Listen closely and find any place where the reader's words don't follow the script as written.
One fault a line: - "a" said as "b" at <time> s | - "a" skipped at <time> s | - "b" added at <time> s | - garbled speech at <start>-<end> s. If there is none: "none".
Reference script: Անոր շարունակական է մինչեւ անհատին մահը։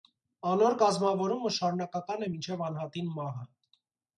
- "կազմաւորումը" added at 0.8 s